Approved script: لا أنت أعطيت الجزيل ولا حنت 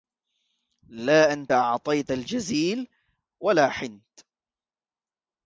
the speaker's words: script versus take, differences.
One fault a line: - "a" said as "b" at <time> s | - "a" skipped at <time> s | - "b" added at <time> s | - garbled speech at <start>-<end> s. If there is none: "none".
none